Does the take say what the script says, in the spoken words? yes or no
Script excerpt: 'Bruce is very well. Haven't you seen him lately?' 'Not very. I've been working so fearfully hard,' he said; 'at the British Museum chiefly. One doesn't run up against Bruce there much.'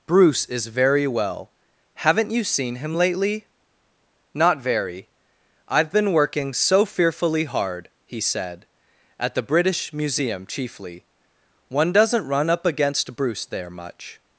yes